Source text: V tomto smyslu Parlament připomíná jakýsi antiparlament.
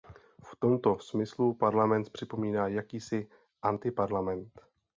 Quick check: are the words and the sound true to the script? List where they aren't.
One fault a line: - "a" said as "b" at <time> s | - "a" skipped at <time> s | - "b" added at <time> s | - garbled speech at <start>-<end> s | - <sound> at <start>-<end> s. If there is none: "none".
none